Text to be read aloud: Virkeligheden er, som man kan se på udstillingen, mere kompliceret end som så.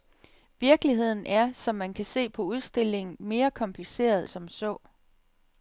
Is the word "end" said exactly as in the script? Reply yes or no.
no